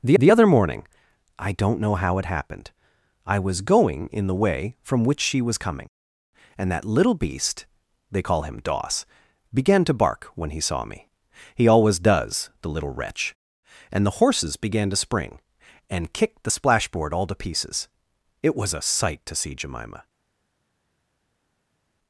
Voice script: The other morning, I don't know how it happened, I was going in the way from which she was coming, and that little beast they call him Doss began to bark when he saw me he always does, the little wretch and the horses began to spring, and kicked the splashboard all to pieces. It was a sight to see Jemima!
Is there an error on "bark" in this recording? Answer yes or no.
no